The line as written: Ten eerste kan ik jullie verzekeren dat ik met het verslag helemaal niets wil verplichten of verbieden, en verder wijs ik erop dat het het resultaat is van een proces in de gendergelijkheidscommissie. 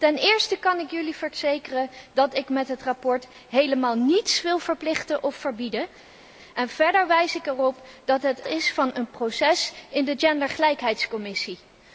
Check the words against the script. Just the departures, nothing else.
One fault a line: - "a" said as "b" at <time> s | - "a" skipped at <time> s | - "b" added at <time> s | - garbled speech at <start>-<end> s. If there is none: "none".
- "het resultaat" skipped at 8.4 s